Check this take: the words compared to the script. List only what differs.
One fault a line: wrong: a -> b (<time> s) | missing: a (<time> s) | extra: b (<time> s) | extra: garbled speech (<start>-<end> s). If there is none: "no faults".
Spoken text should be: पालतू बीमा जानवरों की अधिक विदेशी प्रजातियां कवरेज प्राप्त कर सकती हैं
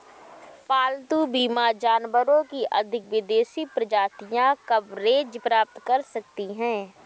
no faults